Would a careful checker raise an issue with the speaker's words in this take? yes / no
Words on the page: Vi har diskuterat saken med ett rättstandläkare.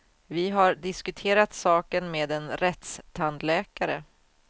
yes